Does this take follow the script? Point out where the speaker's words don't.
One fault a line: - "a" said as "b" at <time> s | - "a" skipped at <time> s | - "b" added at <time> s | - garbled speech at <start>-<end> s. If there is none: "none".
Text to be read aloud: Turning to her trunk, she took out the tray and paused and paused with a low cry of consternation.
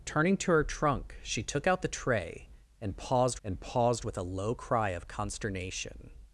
none